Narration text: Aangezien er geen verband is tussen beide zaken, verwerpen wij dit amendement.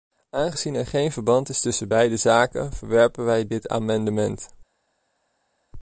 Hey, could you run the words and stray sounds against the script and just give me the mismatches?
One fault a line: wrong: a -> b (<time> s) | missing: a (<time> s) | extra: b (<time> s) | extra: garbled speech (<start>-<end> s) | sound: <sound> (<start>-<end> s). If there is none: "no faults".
no faults